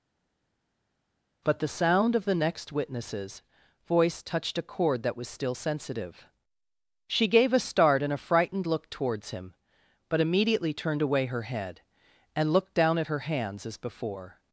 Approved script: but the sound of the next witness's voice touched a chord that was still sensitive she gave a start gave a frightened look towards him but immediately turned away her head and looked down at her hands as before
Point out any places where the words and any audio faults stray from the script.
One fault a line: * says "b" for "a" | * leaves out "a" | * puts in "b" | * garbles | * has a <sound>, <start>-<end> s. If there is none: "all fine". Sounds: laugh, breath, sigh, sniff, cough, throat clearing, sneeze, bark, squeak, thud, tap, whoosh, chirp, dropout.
* says "and" for "gave"